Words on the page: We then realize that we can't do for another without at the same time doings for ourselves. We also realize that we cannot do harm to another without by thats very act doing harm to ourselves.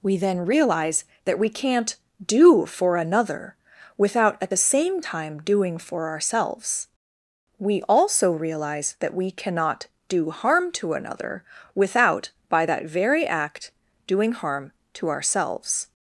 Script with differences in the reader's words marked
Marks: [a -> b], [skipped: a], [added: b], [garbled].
We then realize that we can't do for another without at the same time [doings -> doing] for ourselves. We also realize that we cannot do harm to another without by [thats -> that] very act doing harm to ourselves.